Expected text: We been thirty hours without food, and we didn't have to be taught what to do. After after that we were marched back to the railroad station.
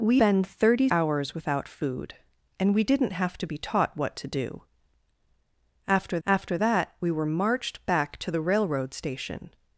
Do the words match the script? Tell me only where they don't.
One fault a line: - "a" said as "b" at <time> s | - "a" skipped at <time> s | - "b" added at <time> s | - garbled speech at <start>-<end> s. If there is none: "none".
none